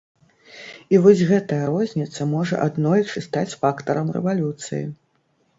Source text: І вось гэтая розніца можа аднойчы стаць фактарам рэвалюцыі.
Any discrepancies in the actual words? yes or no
no